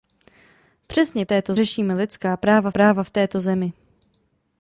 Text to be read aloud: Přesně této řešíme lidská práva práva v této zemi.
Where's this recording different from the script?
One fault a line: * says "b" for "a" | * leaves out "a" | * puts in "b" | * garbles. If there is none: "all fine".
all fine